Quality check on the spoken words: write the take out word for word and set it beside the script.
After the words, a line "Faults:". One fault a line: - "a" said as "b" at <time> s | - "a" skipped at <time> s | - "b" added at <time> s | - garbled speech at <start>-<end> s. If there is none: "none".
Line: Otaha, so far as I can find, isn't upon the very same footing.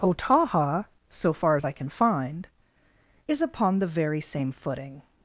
Otaha, so far as I can find, is upon the very same footing.
Faults:
- "isn't" said as "is" at 3.3 s